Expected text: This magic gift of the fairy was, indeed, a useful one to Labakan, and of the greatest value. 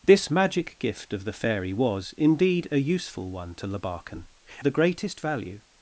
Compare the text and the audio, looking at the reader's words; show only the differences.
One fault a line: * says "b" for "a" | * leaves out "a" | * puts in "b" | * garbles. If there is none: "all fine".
* leaves out "and of"